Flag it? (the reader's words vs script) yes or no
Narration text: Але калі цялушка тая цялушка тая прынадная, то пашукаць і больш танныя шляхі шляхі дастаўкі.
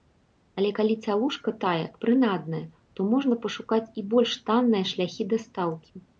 yes